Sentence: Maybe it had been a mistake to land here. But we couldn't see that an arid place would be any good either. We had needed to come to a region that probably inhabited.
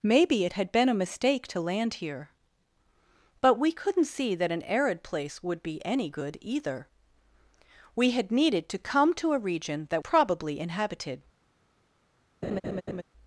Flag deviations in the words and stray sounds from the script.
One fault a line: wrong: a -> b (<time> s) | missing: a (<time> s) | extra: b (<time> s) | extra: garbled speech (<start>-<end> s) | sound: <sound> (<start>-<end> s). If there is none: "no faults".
sound: laugh (12.4-13.0 s)